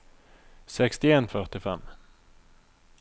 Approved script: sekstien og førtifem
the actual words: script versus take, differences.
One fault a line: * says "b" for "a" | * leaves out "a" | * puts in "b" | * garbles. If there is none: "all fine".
all fine